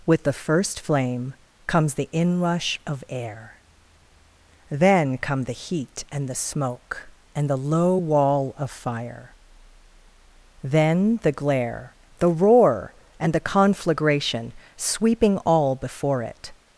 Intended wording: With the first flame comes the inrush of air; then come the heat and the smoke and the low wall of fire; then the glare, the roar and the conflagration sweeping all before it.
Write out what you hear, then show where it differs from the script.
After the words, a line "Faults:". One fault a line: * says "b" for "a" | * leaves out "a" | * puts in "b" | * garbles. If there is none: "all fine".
With the first flame comes the inrush of air; then come the heat and the smoke and the low wall of fire; then the glare, the roar and the conflagration sweeping all before it.
Faults:
all fine